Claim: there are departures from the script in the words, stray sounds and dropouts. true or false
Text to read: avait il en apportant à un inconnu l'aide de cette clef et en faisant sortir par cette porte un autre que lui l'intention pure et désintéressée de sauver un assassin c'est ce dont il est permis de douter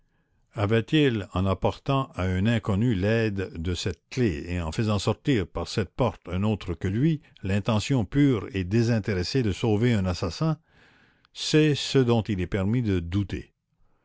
false